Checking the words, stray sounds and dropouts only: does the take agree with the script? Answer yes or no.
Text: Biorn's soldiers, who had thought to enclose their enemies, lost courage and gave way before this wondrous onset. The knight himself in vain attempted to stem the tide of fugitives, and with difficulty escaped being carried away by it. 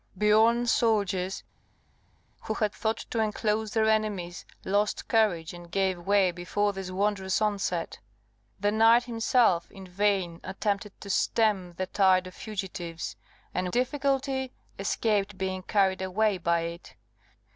no